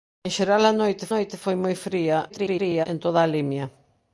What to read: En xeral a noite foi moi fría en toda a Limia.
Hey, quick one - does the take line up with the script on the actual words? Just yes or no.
no